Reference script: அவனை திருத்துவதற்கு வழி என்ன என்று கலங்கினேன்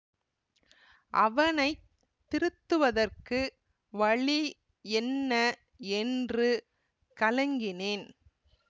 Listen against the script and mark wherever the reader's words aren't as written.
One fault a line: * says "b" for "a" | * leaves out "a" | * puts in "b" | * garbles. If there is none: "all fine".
all fine